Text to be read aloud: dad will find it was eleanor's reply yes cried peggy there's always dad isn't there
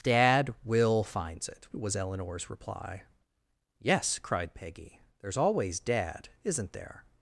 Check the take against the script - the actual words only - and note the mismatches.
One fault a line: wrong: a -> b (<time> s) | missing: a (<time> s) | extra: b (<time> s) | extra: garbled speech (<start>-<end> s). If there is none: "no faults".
wrong: find -> finds (1.0 s)